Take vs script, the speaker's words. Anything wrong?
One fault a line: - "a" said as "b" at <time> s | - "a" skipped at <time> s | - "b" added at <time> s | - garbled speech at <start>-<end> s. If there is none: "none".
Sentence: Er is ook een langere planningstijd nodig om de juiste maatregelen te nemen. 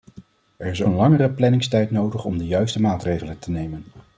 - "ook" skipped at 0.8 s